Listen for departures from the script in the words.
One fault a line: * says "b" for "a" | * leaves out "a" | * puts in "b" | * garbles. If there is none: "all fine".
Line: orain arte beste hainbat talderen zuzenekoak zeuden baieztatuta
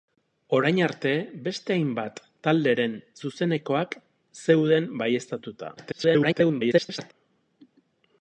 * garbles